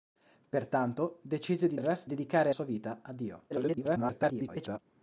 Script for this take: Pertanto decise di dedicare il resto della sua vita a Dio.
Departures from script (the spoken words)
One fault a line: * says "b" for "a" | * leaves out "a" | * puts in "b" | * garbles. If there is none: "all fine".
* leaves out "dedicare"
* says "dedicare" for "della"
* garbles